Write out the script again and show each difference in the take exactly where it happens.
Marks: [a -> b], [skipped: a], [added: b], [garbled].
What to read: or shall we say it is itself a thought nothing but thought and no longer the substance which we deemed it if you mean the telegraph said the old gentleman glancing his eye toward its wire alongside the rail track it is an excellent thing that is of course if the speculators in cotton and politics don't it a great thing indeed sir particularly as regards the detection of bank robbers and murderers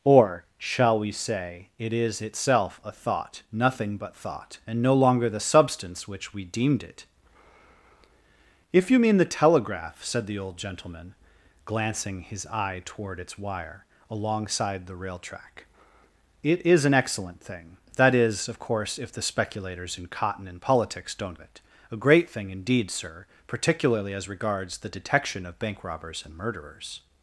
or shall we say it is itself a thought nothing but thought and no longer the substance which we deemed it if you mean the telegraph said the old gentleman glancing his eye toward its wire alongside the rail track it is an excellent thing that is of course if the speculators in cotton and politics don't it a great thing indeed sir particularly as regards the detection of bank robbers and murderers